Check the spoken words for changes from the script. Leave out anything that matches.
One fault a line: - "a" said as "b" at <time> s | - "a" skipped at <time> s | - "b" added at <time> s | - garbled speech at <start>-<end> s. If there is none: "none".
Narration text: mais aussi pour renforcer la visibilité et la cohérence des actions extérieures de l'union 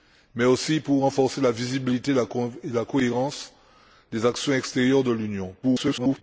- garbled speech at 5.6-6.2 s